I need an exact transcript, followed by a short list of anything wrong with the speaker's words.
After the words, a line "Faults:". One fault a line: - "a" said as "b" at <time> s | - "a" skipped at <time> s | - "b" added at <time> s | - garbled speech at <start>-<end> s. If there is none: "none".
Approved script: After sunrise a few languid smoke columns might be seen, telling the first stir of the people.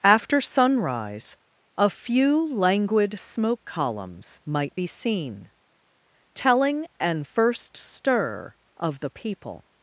After sunrise a few languid smoke columns might be seen, telling an first stir of the people.
Faults:
- "the" said as "an" at 7.0 s